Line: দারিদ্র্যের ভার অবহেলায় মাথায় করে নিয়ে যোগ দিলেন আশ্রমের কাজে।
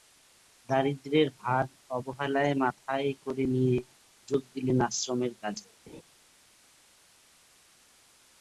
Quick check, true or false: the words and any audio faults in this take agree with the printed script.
false